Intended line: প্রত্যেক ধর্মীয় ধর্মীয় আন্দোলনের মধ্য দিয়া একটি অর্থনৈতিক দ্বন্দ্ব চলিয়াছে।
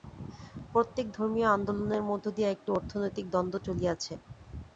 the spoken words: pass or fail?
fail